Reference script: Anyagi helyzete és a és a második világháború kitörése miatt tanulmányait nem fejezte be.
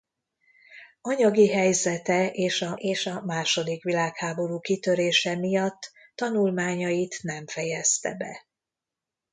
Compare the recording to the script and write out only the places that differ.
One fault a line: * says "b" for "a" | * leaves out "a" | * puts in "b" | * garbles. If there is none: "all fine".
all fine